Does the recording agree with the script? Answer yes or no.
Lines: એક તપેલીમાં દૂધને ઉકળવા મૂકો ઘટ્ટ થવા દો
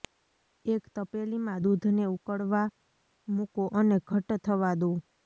no